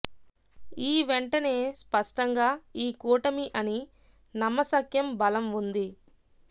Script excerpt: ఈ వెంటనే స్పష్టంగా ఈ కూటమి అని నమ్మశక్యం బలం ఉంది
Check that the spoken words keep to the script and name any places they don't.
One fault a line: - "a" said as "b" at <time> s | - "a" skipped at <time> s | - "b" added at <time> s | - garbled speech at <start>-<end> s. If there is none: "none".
none